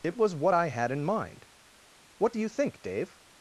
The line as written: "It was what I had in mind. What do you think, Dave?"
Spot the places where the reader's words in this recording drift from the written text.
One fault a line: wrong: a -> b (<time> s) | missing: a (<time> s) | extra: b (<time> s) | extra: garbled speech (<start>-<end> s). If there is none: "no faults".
no faults